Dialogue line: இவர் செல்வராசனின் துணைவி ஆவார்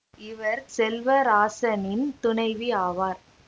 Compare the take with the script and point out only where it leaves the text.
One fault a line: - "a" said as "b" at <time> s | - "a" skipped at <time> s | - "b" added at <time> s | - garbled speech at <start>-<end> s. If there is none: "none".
none